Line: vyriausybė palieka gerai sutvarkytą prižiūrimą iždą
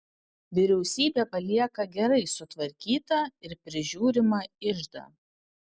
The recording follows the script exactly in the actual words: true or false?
false